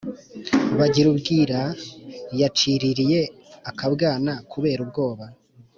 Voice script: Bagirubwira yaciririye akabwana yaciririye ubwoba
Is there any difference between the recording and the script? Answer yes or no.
yes